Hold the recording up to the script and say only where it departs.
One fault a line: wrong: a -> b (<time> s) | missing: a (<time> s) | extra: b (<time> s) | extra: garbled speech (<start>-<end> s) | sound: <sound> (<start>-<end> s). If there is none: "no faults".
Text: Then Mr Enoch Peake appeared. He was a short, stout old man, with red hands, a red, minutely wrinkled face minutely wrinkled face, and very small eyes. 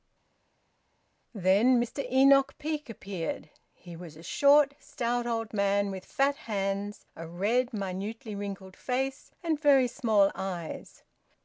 wrong: red -> fat (6.0 s)
missing: minutely wrinkled face (9.3 s)